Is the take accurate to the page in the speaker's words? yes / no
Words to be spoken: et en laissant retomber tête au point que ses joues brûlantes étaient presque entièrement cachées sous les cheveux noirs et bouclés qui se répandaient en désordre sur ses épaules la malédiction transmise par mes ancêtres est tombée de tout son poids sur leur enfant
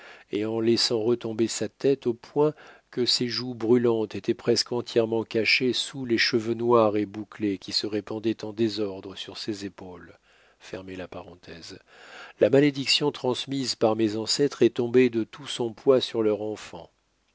no